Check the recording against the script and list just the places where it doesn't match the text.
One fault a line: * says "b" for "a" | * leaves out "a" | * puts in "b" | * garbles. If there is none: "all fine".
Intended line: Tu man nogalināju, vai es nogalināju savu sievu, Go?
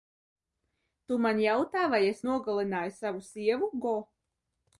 * says "jautā" for "nogalināju"